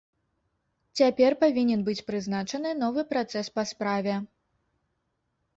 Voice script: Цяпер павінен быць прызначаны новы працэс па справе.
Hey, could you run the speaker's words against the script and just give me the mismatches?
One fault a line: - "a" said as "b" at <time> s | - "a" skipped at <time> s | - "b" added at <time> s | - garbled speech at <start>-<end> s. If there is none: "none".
none